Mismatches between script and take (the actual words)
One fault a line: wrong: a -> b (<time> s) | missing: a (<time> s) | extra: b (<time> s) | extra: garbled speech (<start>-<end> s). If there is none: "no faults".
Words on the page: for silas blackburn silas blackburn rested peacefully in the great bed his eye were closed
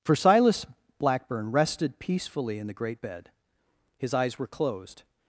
missing: silas blackburn (1.5 s)
wrong: eye -> eyes (4.1 s)